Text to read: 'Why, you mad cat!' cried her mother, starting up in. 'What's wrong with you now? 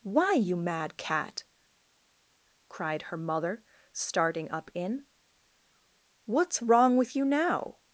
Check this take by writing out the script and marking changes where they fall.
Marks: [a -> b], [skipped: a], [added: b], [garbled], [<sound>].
'Why, you mad cat!' cried her mother, starting up in. 'What's wrong with you now?